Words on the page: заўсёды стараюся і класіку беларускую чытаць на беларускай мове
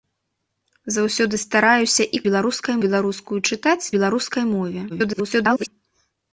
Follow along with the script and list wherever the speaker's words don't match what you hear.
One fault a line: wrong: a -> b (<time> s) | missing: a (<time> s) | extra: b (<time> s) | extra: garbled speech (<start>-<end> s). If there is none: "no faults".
wrong: класіку -> беларускай (2.3 s)
missing: на (3.8 s)
extra: garbled speech (4.9-5.7 s)